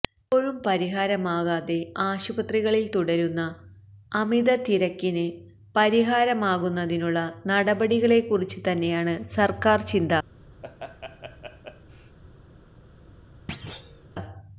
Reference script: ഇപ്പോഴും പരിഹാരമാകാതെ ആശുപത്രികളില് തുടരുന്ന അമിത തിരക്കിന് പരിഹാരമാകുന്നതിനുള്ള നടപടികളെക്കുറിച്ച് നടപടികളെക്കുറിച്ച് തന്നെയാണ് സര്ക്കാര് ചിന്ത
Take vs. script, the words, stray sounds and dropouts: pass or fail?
fail